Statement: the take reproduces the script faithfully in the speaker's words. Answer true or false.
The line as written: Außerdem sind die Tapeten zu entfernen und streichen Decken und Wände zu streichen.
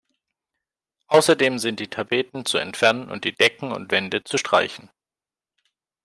false